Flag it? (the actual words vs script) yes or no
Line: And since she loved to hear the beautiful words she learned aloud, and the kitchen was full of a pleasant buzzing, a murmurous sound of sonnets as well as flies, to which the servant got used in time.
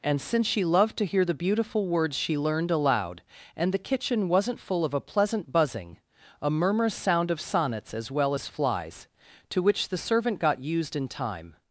yes